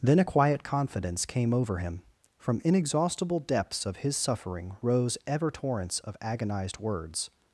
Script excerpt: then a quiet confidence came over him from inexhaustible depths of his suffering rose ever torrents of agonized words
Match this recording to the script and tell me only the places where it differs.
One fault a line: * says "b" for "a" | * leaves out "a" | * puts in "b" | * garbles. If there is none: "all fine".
all fine